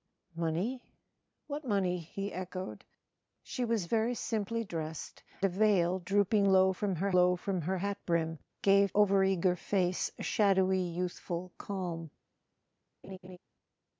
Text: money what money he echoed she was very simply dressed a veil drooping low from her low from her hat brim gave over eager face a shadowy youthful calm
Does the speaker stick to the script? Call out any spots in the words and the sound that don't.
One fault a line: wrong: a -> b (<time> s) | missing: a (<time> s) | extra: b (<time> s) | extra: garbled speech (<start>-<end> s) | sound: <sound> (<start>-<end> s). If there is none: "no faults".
sound: laugh (13.0-13.4 s)